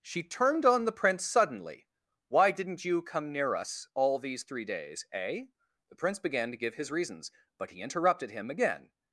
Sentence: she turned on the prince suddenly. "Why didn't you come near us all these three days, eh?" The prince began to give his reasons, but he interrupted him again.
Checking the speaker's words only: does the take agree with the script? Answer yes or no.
yes